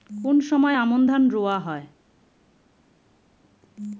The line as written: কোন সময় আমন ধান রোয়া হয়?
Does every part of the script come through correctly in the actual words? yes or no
yes